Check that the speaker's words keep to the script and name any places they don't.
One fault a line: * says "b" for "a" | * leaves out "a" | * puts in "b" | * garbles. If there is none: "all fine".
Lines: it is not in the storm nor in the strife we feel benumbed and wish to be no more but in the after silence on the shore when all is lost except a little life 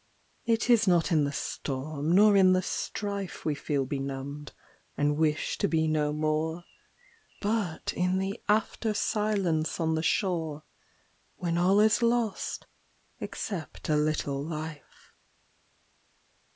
all fine